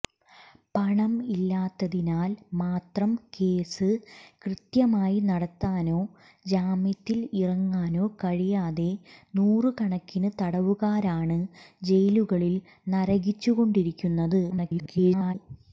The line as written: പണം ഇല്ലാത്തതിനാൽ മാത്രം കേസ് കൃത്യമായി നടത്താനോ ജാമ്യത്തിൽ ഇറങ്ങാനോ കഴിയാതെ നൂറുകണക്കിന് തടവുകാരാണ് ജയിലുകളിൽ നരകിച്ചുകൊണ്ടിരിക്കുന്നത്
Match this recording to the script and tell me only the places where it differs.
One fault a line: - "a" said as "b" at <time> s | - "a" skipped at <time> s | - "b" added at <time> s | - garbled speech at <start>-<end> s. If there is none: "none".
- garbled speech at 14.5-15.3 s